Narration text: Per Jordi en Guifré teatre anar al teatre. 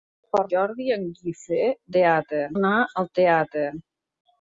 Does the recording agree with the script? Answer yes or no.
yes